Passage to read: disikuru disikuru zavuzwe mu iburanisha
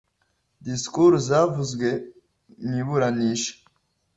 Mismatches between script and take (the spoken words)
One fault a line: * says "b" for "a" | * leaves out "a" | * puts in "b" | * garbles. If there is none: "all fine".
* leaves out "disikuru"